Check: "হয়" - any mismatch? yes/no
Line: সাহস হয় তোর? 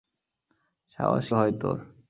no